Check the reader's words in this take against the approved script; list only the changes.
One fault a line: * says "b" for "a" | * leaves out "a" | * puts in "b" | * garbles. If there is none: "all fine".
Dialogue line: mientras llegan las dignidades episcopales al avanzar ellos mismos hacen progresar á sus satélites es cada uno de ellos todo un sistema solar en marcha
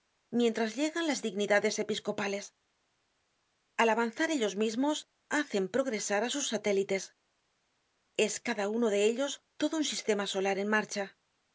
all fine